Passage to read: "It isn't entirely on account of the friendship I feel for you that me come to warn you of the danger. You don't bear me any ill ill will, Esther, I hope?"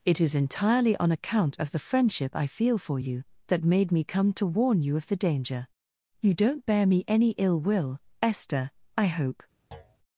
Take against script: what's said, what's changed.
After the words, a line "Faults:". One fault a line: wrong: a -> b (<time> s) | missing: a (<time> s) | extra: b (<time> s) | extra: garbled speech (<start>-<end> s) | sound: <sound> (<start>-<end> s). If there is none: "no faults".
"It is entirely on account of the friendship I feel for you that made me come to warn you of the danger. You don't bear me any ill will, Esther, I hope?"
Faults:
wrong: isn't -> is (0.2 s)
extra: made (3.7 s)
missing: ill (7.6 s)
sound: thud (9.7-10.0 s)